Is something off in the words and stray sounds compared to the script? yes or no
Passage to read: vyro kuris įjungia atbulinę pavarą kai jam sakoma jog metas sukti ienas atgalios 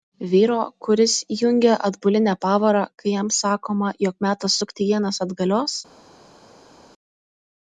no